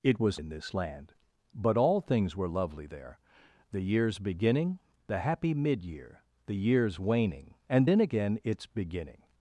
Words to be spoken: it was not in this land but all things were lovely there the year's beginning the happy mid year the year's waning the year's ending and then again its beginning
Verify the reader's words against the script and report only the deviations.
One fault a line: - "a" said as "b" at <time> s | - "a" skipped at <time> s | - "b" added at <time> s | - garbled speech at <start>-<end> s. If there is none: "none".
- "not" skipped at 0.4 s
- "the year's ending" skipped at 7.6 s